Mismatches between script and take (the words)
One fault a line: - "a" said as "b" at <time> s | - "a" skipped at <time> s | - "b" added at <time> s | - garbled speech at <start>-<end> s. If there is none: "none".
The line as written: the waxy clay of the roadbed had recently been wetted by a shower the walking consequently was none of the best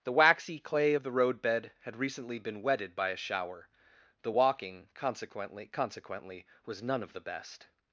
- "consequently" added at 5.7 s